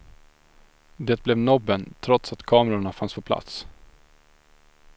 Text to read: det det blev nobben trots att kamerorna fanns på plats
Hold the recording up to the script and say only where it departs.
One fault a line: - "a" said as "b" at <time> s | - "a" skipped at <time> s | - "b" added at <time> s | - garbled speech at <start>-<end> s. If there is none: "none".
- "det" skipped at 1.2 s